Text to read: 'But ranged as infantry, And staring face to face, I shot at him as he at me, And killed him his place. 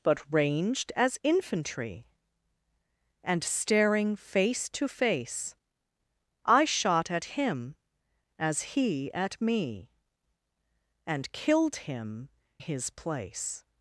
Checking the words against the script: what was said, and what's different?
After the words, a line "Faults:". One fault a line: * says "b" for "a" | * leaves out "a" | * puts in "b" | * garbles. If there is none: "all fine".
'But ranged as infantry, And staring face to face, I shot at him as he at me, And killed him his place.
Faults:
all fine